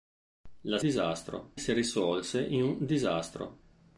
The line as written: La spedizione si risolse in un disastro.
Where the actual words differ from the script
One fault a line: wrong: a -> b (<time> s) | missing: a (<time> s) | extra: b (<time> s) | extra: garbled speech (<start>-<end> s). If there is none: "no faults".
wrong: spedizione -> disastro (0.8 s)